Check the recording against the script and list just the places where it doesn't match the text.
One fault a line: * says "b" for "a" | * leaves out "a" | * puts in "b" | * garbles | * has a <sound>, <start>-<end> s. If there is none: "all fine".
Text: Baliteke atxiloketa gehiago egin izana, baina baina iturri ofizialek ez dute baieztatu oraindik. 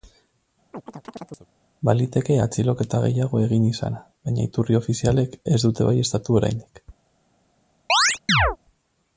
* has a chirp, 0.7-1.5 s
* leaves out "baina"
* has a chirp, 7.9-8.6 s